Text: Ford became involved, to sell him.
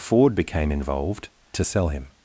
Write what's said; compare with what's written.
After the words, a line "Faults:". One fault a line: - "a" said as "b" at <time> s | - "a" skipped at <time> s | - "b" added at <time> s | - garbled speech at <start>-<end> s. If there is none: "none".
Ford became involved, to sell him.
Faults:
none